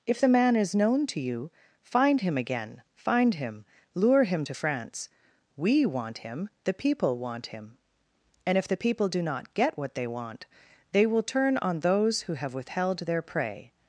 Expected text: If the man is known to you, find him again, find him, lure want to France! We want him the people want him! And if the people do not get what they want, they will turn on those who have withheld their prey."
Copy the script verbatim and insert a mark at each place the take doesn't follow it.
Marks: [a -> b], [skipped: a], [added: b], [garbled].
If the man is known to you, find him again, find him, lure [want -> him] to France! We want him the people want him! And if the people do not get what they want, they will turn on those who have withheld their prey."